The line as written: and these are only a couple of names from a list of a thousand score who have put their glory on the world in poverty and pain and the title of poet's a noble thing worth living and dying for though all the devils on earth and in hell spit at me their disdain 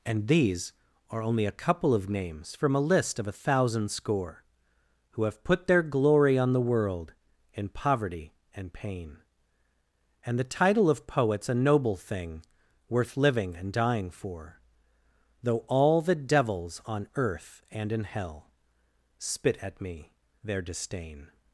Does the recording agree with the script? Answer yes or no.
yes